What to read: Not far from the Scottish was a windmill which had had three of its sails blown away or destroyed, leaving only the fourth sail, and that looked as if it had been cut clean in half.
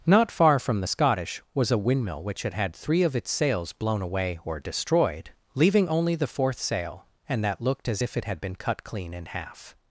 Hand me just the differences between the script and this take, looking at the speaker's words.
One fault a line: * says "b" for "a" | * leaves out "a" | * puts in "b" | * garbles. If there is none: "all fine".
all fine